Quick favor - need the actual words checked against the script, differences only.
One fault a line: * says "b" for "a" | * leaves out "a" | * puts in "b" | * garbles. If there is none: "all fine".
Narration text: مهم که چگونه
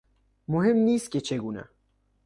* puts in "نیست"